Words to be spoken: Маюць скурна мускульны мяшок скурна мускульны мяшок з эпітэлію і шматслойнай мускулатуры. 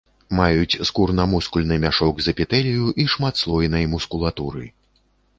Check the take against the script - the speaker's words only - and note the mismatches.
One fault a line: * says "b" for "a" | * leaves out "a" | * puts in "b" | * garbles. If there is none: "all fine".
* leaves out "скурна мускульны мяшок"